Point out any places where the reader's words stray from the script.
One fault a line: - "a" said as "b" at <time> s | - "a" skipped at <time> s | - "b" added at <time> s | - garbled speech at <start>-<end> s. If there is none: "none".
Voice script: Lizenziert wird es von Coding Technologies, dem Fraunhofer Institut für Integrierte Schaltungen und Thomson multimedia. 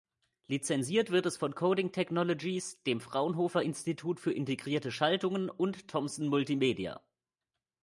none